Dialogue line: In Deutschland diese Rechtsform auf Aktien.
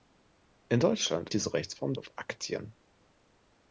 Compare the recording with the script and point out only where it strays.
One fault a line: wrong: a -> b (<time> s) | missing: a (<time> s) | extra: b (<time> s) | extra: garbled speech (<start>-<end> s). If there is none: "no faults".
no faults